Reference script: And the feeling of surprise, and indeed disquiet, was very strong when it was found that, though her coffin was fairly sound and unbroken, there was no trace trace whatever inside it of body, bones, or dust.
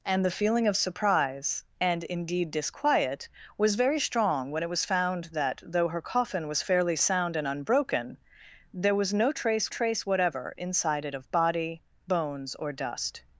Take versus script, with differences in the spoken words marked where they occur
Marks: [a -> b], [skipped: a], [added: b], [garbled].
And the feeling of surprise, and indeed disquiet, was very strong when it was found that, though her coffin was fairly sound and unbroken, there was no trace trace whatever inside it of body, bones, or dust.